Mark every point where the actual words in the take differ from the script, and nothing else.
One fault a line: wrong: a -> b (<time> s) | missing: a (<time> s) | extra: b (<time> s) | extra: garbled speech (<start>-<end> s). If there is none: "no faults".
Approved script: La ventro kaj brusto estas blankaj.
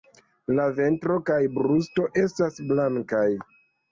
no faults